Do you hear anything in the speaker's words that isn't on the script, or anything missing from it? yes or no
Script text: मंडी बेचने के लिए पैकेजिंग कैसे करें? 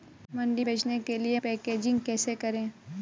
no